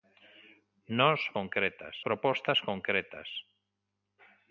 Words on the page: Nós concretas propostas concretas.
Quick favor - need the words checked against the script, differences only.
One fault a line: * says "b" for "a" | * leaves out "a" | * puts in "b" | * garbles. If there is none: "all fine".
all fine